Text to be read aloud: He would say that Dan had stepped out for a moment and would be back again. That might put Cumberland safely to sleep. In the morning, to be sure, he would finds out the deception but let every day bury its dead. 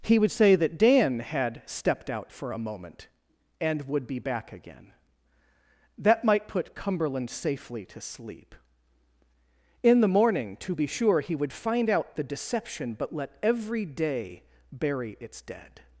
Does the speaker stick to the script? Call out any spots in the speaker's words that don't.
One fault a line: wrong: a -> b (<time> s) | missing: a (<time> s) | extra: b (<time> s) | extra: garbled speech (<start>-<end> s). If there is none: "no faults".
wrong: finds -> find (11.5 s)